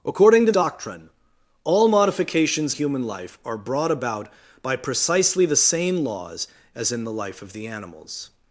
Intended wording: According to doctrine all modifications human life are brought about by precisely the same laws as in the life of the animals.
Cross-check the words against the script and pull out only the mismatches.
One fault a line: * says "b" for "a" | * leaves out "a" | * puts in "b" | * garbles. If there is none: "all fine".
all fine